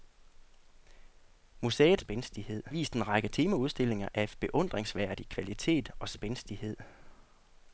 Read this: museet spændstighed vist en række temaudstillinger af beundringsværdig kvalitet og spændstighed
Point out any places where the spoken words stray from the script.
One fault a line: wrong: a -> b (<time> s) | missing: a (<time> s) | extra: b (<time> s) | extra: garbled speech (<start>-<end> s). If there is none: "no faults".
no faults